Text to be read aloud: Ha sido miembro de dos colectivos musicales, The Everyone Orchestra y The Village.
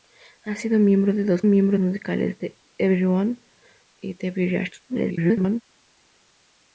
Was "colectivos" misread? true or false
true